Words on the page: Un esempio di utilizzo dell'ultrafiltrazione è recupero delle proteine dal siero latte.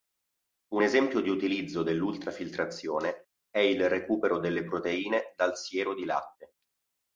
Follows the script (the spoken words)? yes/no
no